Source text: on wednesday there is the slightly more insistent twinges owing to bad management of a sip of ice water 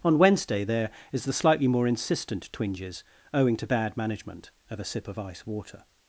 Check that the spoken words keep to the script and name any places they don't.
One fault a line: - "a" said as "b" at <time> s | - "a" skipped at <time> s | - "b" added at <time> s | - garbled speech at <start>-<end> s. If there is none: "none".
none